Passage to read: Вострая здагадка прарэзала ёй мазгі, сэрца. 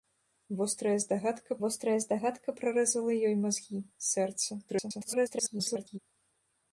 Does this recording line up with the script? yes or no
no